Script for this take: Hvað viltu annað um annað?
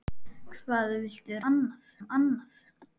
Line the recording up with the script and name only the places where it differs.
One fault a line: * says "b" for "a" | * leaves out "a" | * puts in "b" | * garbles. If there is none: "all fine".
all fine